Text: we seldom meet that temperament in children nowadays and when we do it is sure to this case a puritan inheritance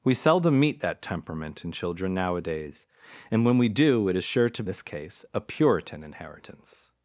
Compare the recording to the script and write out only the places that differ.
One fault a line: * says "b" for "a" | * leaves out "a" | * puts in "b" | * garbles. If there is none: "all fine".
all fine